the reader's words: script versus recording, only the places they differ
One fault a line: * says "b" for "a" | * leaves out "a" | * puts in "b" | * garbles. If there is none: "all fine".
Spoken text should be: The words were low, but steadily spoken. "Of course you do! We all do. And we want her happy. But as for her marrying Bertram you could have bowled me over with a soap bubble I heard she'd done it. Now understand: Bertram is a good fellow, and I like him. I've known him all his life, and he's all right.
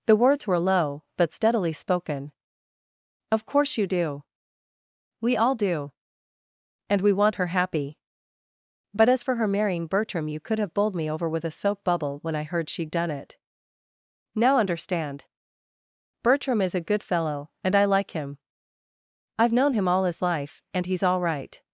* puts in "when"